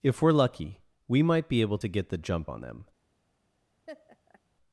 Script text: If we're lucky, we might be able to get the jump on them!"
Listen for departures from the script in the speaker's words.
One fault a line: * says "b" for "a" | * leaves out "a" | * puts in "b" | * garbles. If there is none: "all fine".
all fine